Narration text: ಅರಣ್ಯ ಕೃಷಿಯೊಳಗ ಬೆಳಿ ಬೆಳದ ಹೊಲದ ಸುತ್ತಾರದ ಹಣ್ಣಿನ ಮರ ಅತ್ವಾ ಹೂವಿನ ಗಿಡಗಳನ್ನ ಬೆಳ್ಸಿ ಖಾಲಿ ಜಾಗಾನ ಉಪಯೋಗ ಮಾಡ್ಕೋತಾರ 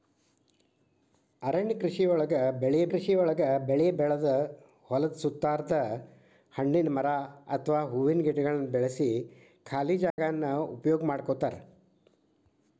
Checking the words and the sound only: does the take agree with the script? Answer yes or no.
no